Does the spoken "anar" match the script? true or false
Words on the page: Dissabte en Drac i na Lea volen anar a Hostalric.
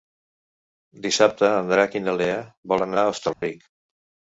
false